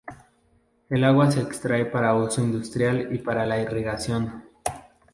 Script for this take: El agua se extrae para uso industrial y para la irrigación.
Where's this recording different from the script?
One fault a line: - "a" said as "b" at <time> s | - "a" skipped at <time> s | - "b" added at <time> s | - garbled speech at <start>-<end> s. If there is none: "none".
none